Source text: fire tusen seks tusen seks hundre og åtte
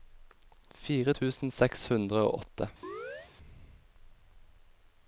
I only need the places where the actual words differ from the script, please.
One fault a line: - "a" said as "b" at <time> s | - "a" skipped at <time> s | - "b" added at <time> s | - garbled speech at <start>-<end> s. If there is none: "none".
- "tusen seks" skipped at 1.9 s